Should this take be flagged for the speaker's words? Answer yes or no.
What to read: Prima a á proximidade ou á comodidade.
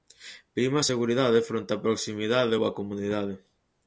yes